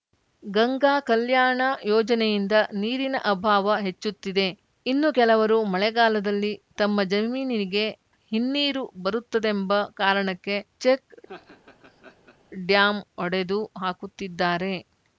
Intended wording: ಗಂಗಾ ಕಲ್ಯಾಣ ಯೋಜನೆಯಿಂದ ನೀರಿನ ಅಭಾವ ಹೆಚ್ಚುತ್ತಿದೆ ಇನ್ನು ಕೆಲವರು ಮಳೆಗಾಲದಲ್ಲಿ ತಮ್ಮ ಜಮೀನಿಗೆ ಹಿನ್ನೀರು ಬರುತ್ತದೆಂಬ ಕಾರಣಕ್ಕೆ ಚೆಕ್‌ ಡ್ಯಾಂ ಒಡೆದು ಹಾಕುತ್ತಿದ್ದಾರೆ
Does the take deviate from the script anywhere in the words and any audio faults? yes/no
yes